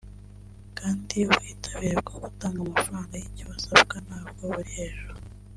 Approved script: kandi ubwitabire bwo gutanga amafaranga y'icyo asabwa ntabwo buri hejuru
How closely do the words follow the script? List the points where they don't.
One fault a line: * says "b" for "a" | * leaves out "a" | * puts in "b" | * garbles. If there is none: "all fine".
all fine